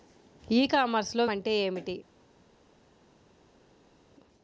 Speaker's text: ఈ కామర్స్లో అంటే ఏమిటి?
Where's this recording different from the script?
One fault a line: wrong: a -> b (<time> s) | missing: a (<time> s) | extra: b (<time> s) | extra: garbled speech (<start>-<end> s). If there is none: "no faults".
no faults